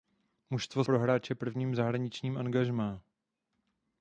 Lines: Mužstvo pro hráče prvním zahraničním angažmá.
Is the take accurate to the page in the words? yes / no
yes